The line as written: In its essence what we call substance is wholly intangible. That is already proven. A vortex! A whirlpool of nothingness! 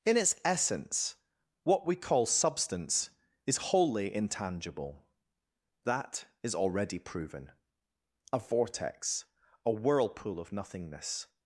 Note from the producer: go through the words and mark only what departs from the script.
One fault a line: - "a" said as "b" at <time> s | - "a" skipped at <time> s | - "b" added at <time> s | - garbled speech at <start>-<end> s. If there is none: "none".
none